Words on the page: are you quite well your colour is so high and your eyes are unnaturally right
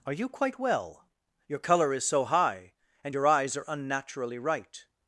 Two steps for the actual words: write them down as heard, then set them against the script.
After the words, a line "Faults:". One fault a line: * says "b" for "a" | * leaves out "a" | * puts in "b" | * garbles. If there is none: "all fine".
are you quite well your colour is so high and your eyes are unnaturally right
Faults:
all fine